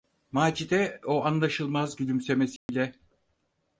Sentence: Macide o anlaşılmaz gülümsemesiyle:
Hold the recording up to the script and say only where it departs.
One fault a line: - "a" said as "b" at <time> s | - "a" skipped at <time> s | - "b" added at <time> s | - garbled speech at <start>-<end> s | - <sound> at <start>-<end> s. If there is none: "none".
- dropout at 2.6-2.7 s